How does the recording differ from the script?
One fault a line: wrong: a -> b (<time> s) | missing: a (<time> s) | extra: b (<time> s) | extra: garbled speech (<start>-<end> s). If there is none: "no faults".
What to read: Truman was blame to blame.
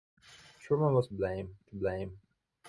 no faults